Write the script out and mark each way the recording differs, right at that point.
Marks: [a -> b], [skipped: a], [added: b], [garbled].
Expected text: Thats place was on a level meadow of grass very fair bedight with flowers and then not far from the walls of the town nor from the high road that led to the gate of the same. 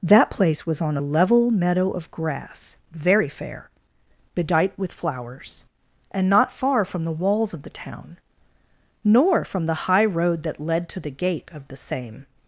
[Thats -> That] place was on a level meadow of grass very fair bedight with flowers and [skipped: then] not far from the walls of the town nor from the high road that led to the gate of the same.